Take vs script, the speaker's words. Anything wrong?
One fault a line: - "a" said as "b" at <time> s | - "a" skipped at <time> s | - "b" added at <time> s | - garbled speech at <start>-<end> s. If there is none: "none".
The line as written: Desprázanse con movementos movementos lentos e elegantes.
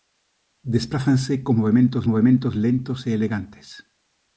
none